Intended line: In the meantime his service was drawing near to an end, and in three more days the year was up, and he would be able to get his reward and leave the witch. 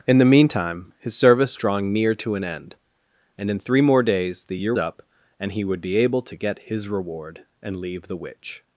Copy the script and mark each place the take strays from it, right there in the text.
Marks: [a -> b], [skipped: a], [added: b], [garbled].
In the meantime his service [skipped: was] drawing near to an end, and in three more days the year [skipped: was] up, and he would be able to get his reward and leave the witch.